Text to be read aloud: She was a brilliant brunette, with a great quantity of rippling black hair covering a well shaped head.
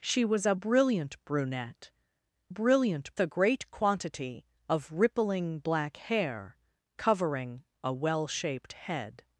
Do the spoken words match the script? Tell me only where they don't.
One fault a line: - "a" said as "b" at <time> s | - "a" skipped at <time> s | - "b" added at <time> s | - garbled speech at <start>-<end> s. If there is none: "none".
- "with" said as "brilliant" at 2.5 s